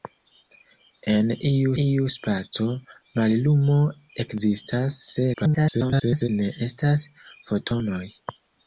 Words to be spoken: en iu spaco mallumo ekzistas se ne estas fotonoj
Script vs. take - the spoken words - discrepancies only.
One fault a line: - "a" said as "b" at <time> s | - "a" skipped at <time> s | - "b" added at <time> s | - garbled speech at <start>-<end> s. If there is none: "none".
- "iu" added at 1.8 s
- garbled speech at 5.3-6.3 s